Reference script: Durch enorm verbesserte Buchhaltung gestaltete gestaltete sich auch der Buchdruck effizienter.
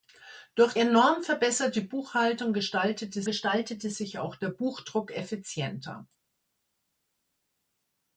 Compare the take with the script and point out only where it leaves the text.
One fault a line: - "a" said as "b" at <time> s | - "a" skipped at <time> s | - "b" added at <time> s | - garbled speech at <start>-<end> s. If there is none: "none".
none